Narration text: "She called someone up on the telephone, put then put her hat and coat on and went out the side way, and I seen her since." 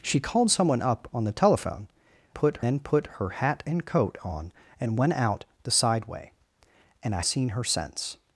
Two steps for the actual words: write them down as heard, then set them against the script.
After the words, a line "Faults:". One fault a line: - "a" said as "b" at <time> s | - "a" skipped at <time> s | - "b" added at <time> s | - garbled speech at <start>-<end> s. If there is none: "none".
"She called someone up on the telephone, put then put her hat and coat on and went out the side way, and I seen her since."
Faults:
none